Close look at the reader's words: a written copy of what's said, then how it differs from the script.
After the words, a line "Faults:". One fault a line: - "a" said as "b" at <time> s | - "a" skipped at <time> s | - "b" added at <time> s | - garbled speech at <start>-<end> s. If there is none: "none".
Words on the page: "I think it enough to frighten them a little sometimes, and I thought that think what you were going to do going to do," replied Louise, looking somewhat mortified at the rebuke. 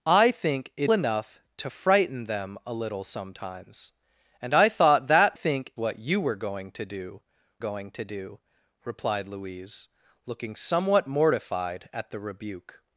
"I think it enough to frighten them a little sometimes, and I thought that think what you were going to do going to do," replied Louise, looking somewhat mortified at the rebuke.
Faults:
none